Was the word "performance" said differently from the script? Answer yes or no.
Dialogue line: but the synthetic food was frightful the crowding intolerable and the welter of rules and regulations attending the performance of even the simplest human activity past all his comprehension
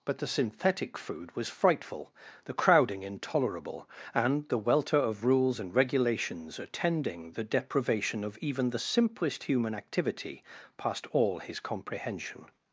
yes